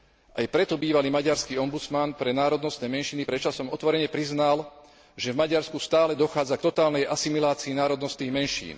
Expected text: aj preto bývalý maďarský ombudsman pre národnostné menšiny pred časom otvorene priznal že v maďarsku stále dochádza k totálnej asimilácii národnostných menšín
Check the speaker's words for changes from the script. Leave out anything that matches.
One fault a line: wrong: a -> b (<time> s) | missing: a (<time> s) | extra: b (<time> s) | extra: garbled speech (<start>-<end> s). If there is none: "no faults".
no faults